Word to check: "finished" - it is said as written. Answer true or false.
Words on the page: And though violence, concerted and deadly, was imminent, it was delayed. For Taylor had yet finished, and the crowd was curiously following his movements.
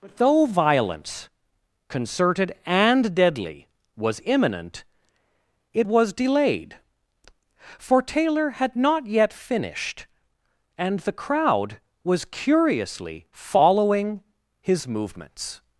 true